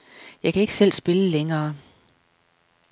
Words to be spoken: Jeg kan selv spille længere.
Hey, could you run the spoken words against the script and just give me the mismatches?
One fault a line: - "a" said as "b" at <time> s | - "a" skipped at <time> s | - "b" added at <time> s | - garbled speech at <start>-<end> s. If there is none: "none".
- "ikke" added at 0.6 s